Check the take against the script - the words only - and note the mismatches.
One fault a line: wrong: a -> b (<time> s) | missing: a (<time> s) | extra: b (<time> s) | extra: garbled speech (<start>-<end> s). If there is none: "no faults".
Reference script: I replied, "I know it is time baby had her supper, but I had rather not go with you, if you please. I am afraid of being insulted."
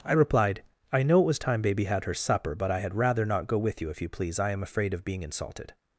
wrong: is -> was (1.2 s)